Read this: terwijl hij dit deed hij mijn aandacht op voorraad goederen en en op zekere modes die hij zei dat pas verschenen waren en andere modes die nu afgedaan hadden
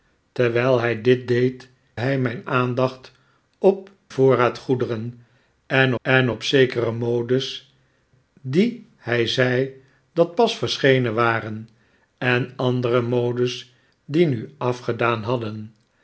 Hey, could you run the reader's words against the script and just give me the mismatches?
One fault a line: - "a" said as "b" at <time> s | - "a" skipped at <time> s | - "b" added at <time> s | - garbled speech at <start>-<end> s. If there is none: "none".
none